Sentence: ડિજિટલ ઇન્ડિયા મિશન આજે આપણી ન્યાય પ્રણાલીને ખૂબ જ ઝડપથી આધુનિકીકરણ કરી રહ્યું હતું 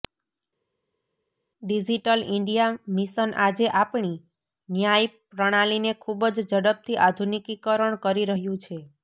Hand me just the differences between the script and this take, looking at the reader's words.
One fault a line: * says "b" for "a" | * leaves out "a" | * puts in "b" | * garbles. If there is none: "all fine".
* says "છે" for "હતું"